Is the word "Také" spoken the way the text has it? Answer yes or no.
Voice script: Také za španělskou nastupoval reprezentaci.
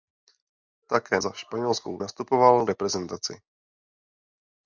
yes